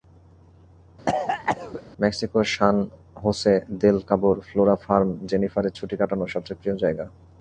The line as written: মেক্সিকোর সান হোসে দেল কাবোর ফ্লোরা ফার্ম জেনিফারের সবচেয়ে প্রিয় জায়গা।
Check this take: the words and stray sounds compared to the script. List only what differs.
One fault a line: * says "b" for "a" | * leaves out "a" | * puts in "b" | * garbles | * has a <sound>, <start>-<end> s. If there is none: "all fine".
* has a cough, 1.1-1.8 s
* puts in "ছুটি কাটানোর"